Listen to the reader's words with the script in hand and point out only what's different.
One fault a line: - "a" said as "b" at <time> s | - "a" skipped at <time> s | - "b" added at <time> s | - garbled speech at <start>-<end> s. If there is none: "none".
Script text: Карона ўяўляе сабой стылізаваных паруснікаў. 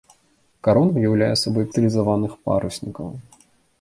none